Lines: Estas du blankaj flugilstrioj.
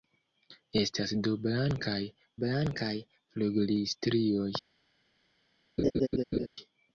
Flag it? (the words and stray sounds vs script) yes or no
yes